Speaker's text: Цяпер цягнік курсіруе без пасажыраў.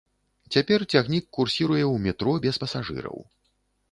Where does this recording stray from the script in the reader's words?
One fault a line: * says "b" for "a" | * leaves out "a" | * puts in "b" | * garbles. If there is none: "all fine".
* puts in "ў метро"